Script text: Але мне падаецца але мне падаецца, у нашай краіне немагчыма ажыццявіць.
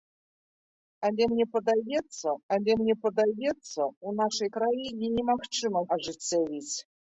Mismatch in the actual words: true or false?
false